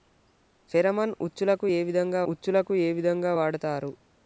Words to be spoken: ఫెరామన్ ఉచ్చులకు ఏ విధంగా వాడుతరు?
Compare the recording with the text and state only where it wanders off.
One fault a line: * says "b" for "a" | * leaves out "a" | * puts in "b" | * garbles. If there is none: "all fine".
* puts in "ఉచ్చులకు ఏ విధంగా"